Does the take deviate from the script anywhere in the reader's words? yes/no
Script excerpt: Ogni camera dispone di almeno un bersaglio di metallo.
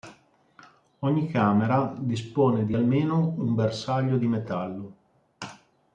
no